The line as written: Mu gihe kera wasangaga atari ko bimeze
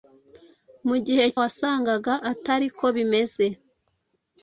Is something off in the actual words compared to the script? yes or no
yes